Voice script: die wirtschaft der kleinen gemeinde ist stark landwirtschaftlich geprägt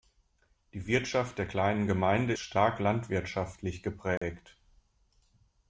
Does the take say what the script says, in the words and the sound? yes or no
no